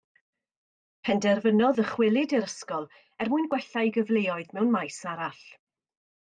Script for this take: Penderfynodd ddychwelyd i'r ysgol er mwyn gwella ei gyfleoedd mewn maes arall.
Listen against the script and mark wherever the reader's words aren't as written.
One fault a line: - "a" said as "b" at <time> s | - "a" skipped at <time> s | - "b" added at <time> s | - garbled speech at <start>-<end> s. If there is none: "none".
none